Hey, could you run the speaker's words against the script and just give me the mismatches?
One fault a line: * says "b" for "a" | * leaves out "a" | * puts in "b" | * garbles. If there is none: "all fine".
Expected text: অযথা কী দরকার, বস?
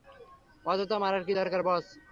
* puts in "মারার"